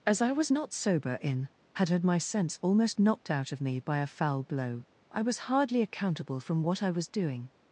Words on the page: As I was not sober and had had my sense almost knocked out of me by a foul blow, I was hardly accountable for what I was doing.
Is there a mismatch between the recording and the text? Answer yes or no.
yes